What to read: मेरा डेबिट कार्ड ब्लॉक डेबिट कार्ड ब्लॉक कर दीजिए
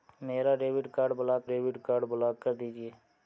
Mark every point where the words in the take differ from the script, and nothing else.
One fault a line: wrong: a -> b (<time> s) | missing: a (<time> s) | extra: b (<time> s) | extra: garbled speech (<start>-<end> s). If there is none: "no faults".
no faults